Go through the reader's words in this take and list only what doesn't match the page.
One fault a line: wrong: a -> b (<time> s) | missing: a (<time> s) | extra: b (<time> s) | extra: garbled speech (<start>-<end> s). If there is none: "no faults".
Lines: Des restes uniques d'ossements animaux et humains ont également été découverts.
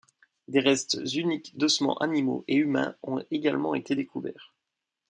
no faults